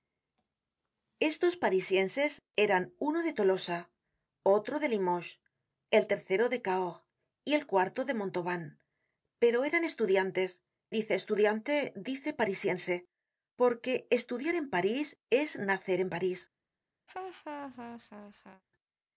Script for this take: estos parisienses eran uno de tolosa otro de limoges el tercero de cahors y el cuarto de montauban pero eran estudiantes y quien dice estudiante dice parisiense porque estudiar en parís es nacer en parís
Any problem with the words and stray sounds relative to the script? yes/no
yes